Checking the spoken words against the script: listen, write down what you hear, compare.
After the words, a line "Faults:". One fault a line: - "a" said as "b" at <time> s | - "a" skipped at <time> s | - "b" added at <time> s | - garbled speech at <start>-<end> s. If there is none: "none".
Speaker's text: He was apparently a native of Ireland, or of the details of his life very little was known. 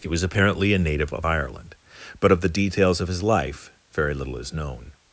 He was apparently a native of Ireland, but of the details of his life very little is known.
Faults:
- "or" said as "but" at 2.2 s
- "was" said as "is" at 4.4 s